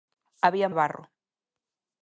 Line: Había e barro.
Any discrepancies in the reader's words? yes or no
no